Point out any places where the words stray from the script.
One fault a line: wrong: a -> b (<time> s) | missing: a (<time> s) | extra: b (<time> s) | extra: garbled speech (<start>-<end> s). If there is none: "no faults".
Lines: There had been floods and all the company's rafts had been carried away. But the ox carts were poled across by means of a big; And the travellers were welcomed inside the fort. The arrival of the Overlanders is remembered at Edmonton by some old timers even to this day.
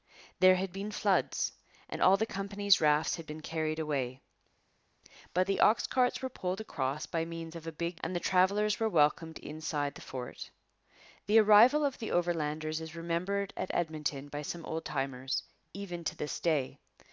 no faults